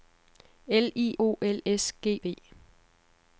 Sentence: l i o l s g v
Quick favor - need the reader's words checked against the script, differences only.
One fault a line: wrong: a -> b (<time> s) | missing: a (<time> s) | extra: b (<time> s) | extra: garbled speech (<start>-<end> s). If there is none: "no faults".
no faults